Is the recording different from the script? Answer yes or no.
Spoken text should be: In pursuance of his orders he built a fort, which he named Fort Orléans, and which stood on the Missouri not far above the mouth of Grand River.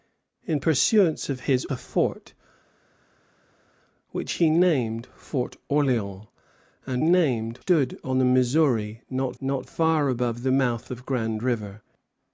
yes